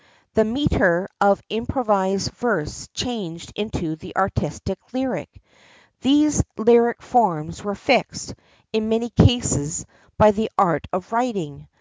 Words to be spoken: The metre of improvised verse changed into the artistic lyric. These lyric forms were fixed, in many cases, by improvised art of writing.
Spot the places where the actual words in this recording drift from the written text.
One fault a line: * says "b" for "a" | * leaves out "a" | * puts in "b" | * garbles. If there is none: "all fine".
* says "the" for "improvised"